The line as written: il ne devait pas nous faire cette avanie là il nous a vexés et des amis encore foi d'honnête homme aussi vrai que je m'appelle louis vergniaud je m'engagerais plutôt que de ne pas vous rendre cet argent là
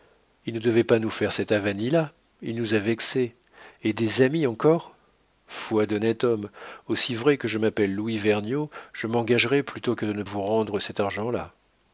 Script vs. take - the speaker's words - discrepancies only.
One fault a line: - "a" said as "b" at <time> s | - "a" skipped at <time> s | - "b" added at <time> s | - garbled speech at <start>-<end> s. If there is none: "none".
- "pas" skipped at 10.2 s